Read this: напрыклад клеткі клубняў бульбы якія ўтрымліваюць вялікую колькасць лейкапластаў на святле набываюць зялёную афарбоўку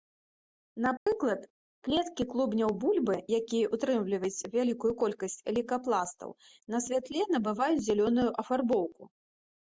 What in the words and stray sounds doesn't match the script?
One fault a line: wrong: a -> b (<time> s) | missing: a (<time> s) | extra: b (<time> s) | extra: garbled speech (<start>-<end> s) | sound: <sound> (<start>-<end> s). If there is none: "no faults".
sound: dropout (1.0-1.1 s)